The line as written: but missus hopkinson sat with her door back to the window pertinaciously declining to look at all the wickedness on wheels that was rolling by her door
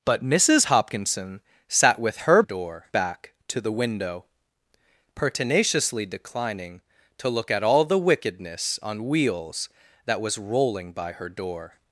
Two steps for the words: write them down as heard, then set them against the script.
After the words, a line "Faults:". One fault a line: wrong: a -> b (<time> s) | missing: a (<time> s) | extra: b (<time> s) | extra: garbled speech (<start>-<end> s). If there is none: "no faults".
but missus hopkinson sat with her door back to the window pertinaciously declining to look at all the wickedness on wheels that was rolling by her door
Faults:
no faults